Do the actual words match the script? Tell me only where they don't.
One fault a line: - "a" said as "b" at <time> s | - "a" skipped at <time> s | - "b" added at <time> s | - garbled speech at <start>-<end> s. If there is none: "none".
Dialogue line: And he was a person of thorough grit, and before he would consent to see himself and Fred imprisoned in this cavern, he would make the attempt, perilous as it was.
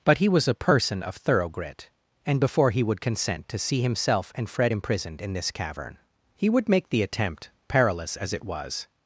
- "And" said as "But" at 0.0 s